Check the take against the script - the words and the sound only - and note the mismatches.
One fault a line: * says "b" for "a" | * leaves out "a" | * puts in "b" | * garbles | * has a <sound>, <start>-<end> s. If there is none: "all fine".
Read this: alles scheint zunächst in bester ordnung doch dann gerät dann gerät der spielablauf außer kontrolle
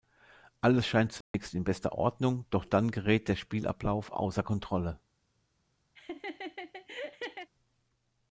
* has a dropout, 1.2-1.3 s
* leaves out "dann gerät"
* has a laugh, 6.0-7.5 s